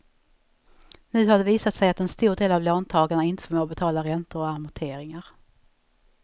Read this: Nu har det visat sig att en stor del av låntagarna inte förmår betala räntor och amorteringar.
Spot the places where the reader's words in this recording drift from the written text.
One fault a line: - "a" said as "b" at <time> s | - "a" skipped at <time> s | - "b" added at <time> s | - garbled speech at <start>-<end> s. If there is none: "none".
none